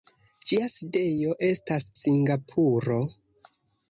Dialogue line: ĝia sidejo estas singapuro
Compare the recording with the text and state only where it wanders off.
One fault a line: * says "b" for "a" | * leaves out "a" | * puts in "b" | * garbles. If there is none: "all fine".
all fine